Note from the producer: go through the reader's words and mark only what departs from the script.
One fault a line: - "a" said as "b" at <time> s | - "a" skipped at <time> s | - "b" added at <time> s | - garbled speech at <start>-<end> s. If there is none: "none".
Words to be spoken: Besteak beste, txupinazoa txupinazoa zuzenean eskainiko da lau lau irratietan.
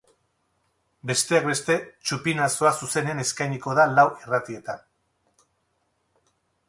- "txupinazoa" skipped at 2.7 s
- "lau" skipped at 4.1 s